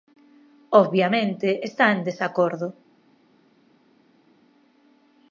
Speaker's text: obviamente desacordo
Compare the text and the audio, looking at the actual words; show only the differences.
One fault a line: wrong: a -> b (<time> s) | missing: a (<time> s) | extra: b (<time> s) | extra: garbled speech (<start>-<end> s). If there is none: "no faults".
extra: está en (1.7 s)